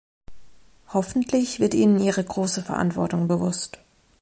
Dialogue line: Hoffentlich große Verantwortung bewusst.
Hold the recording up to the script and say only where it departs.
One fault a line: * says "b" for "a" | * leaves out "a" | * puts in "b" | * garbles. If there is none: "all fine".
* puts in "wird ihnen ihre"